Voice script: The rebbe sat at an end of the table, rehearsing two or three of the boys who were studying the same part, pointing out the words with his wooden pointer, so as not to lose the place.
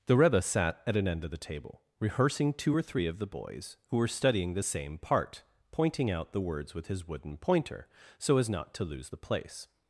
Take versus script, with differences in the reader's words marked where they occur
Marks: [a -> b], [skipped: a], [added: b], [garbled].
The rebbe sat at an end of the table, rehearsing two or three of the boys who were studying the same part, pointing out the words with his wooden pointer, so as not to lose the place.